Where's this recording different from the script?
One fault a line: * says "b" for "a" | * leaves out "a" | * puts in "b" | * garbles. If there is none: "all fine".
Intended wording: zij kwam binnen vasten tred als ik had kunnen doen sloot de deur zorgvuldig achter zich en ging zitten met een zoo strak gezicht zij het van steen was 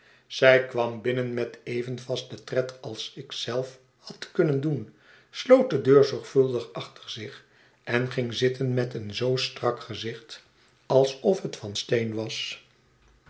* puts in "met even"
* puts in "zelf"
* says "alsof" for "zij"